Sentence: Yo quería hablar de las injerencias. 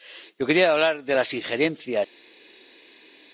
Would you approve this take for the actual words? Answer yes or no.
yes